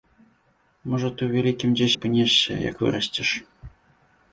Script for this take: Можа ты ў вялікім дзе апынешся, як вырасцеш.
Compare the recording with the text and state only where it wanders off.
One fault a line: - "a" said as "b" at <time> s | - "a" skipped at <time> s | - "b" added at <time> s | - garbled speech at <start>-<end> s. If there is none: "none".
none